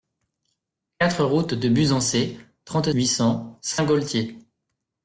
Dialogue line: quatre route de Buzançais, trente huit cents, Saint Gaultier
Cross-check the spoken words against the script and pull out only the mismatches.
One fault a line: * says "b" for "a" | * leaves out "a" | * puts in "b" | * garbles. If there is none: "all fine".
all fine